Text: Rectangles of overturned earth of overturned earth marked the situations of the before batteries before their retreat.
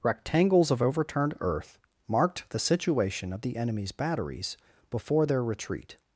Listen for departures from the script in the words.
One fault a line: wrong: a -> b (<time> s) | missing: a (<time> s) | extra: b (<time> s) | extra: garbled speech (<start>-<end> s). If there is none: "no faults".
missing: of overturned earth (1.8 s)
wrong: situations -> situation (2.6 s)
wrong: before -> enemy's (3.6 s)